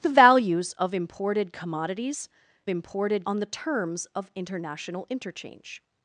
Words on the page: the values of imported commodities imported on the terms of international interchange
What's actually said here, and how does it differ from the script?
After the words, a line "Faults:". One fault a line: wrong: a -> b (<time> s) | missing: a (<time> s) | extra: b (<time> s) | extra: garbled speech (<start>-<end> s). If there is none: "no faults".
the values of imported commodities imported on the terms of international interchange
Faults:
no faults